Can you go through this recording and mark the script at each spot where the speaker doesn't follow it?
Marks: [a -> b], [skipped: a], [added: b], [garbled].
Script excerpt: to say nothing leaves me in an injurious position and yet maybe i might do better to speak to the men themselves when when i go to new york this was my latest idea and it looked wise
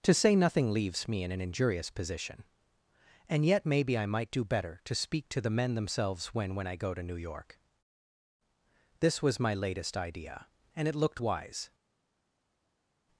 to say nothing leaves me in an injurious position and yet maybe i might do better to speak to the men themselves when when i go to new york this was my latest idea and it looked wise